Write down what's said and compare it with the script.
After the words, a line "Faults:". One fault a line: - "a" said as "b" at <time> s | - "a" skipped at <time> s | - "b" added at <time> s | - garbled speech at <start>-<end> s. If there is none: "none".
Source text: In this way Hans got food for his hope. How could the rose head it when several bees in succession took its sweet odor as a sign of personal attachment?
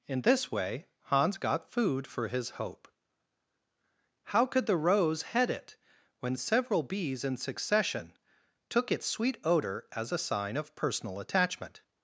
In this way Hans got food for his hope. How could the rose head it when several bees in succession took its sweet odor as a sign of personal attachment?
Faults:
none